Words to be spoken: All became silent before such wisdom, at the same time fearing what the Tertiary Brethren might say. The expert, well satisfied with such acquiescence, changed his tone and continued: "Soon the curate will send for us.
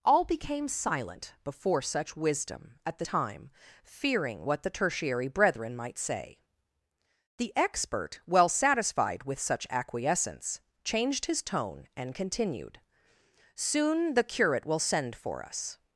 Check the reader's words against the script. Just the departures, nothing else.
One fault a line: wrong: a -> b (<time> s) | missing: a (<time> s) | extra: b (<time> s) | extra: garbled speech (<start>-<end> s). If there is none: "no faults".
missing: same (3.0 s)